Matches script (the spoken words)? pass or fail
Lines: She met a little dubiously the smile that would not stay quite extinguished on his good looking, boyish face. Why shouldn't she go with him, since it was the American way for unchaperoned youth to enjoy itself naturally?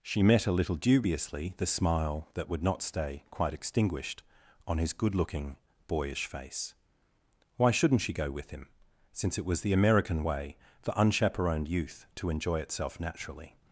pass